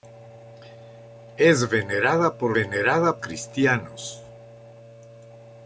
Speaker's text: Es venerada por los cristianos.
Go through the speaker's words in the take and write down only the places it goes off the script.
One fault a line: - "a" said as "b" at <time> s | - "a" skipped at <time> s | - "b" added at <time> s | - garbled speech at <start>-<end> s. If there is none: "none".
- "los" said as "venerada" at 2.5 s